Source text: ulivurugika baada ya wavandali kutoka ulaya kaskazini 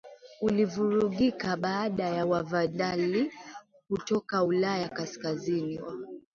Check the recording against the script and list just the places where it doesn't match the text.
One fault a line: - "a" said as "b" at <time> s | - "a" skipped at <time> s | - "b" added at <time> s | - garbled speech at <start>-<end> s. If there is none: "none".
none